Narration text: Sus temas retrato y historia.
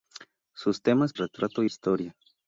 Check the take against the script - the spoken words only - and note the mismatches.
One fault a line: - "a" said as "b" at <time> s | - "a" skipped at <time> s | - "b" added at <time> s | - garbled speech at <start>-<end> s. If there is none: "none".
none